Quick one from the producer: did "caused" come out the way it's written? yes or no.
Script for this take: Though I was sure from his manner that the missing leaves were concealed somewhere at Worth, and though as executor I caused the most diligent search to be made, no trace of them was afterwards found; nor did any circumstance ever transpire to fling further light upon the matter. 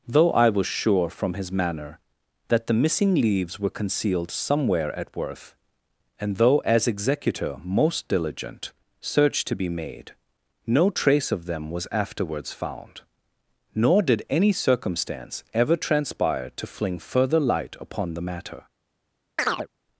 no